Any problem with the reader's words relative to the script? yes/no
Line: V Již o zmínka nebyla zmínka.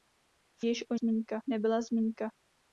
no